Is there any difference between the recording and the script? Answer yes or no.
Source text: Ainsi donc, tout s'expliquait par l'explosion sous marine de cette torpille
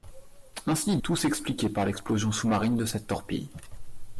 yes